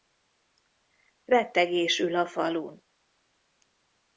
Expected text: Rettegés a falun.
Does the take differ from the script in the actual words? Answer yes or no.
yes